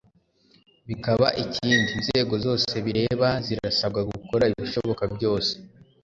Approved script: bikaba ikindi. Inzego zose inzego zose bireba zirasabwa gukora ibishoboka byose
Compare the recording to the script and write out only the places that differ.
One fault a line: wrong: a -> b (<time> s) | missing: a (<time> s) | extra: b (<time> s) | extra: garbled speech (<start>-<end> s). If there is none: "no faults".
missing: inzego zose (2.7 s)